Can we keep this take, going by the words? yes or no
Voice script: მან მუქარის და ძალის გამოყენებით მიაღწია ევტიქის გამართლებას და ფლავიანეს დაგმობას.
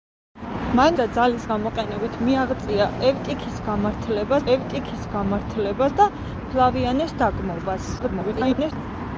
no